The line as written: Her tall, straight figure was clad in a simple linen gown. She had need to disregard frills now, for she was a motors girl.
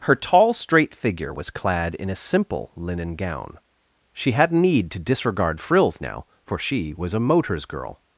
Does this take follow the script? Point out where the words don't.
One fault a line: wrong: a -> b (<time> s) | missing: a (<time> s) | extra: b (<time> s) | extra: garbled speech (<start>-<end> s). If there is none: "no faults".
no faults